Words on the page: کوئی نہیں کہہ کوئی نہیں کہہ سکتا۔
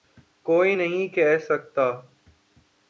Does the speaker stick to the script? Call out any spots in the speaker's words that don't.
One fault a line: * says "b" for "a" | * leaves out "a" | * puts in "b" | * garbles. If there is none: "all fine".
* leaves out "کوئی نہیں کہہ"